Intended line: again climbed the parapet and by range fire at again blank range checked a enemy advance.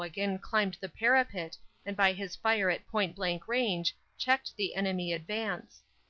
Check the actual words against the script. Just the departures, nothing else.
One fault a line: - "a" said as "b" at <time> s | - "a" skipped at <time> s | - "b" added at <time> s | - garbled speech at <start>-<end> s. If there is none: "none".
- "range" said as "his" at 2.1 s
- "again" said as "point" at 2.9 s
- "a" said as "the" at 4.5 s